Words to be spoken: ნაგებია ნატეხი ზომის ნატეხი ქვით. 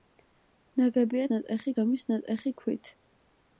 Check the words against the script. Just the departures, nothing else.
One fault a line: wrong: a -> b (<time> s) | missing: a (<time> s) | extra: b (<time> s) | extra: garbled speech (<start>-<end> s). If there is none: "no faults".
no faults